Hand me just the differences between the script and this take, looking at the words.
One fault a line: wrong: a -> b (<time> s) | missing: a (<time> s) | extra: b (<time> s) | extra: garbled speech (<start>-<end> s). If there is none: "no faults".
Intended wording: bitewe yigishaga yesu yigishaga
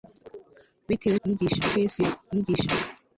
no faults